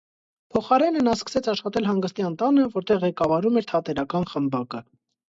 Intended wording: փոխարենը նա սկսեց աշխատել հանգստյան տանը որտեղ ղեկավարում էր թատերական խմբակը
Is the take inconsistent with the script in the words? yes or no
no